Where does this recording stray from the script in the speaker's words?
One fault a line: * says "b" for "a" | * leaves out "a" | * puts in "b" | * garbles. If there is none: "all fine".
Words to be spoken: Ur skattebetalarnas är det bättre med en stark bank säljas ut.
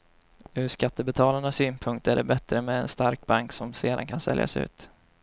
* puts in "synpunkt"
* puts in "som sedan kan"